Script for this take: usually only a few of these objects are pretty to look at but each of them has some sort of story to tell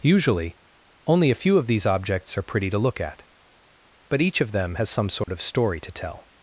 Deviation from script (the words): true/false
false